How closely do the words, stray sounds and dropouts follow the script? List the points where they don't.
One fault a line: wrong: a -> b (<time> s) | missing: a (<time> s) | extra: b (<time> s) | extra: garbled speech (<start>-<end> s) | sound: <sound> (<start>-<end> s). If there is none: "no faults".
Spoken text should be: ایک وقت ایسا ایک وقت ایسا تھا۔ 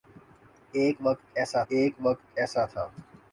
no faults